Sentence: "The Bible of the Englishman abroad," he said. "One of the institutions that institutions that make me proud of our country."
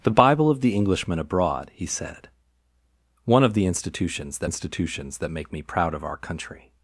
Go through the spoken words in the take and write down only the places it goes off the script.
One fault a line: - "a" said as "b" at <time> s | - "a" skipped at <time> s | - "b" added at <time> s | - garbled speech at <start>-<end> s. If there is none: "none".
none